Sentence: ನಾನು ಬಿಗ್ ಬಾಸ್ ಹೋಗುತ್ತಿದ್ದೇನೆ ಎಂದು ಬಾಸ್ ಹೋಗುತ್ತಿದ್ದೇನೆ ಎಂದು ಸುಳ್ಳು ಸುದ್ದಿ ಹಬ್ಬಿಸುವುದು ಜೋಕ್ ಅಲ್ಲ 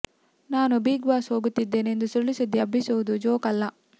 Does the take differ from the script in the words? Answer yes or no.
yes